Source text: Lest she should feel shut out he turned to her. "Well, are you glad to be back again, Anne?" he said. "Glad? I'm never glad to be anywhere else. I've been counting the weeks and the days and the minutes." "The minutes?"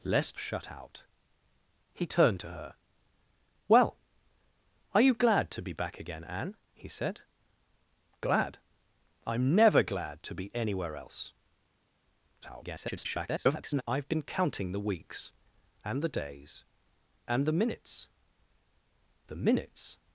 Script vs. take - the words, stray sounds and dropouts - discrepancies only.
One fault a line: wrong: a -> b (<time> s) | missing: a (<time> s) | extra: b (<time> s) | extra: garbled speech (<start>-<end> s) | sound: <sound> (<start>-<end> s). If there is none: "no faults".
missing: she should feel (0.4 s)
extra: garbled speech (12.4-13.8 s)